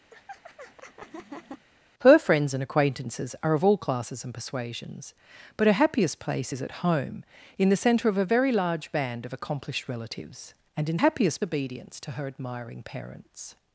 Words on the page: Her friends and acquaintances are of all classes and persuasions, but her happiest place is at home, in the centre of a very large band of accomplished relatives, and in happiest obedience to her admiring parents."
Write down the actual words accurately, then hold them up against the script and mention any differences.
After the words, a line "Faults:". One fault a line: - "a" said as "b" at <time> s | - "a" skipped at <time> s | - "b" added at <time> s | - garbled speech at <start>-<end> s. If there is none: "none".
Her friends and acquaintances are of all classes and persuasions, but her happiest place is at home, in the centre of a very large band of accomplished relatives, and in happiest obedience to her admiring parents."
Faults:
none